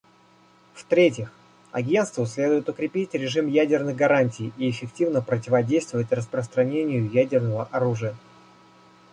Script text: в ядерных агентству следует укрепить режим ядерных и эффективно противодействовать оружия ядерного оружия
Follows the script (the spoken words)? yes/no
no